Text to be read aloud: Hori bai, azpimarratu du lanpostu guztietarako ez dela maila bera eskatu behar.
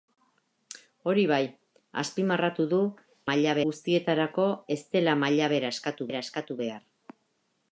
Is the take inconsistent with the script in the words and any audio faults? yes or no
yes